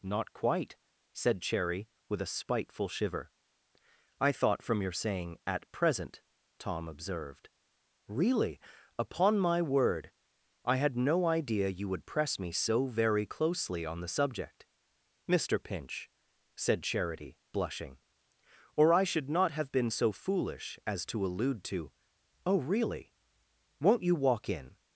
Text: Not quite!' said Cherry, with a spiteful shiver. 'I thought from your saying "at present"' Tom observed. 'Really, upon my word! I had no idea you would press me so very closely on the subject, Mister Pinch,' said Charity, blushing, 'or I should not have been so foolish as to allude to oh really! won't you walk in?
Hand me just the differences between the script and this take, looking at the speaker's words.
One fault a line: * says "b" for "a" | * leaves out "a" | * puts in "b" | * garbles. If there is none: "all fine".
all fine